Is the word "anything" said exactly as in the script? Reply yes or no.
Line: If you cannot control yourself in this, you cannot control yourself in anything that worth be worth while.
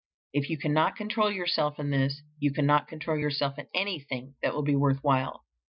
yes